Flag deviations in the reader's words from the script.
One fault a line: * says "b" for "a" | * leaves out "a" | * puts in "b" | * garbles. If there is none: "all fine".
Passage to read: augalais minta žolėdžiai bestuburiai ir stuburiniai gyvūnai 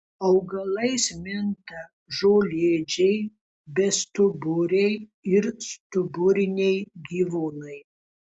all fine